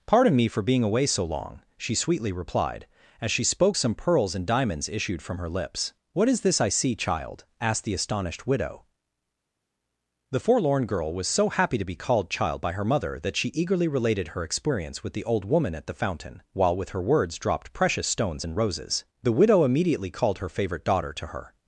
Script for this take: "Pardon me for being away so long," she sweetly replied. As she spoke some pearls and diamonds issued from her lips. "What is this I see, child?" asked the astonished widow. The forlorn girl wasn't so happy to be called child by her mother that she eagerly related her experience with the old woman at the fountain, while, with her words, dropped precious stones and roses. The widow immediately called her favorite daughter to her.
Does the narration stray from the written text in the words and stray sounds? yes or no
yes